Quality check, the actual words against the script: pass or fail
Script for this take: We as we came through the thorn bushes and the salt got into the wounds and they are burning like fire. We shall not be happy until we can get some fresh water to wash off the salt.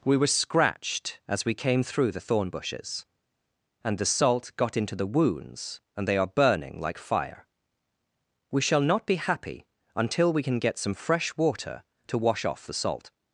fail